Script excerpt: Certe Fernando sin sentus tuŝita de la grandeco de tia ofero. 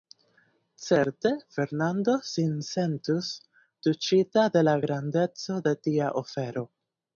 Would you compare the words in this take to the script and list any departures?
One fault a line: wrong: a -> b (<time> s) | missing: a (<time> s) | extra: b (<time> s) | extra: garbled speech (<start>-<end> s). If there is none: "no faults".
no faults